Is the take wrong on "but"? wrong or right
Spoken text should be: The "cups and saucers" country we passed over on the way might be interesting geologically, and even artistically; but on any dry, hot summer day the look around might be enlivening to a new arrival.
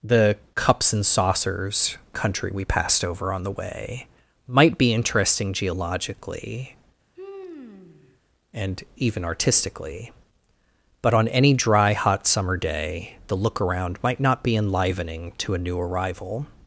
right